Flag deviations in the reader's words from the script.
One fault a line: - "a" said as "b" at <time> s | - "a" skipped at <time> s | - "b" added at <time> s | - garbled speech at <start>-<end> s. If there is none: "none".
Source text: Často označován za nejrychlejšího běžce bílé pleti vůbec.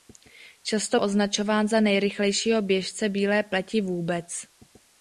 none